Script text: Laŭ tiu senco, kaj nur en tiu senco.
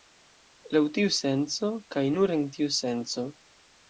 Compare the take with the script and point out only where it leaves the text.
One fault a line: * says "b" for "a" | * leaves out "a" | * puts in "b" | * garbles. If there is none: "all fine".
all fine